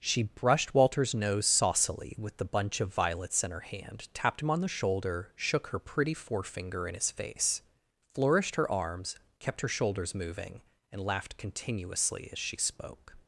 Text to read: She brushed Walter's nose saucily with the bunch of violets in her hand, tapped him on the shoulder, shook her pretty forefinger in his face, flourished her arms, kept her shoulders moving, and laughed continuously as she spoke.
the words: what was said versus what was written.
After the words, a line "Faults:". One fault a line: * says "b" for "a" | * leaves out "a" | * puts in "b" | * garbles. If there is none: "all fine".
She brushed Walter's nose saucily with the bunch of violets in her hand, tapped him on the shoulder, shook her pretty forefinger in his face, flourished her arms, kept her shoulders moving, and laughed continuously as she spoke.
Faults:
all fine